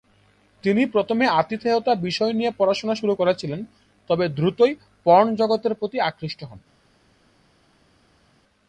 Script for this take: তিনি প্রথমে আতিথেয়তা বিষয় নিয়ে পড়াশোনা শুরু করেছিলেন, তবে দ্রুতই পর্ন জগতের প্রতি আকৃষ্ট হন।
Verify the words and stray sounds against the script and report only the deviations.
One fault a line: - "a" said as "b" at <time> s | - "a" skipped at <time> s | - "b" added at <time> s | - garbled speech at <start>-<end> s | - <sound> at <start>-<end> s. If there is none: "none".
none